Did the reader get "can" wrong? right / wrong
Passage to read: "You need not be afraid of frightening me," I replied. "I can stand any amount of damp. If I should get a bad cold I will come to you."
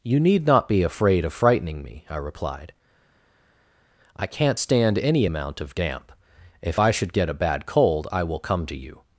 wrong